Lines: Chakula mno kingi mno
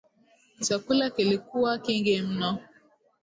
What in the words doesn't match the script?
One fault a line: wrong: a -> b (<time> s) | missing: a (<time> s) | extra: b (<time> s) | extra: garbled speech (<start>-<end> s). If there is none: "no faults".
wrong: mno -> kilikuwa (1.1 s)